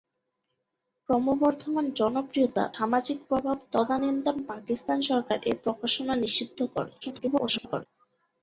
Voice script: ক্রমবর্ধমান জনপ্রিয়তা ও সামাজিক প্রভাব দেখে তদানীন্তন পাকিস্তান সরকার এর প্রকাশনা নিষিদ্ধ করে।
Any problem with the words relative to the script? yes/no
yes